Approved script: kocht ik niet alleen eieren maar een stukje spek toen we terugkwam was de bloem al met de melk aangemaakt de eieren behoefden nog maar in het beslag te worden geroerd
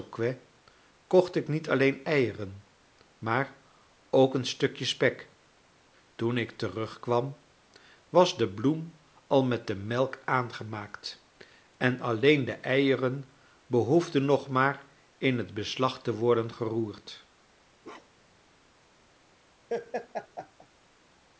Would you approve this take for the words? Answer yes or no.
no